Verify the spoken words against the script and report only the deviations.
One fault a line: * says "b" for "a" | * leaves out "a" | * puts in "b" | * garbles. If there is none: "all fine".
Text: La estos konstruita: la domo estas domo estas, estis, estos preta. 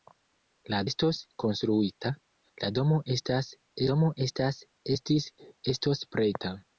all fine